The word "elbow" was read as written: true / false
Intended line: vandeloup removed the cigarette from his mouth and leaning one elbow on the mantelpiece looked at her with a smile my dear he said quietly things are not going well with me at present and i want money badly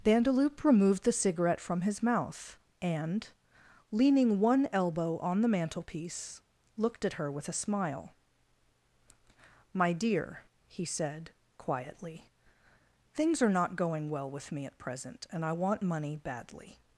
true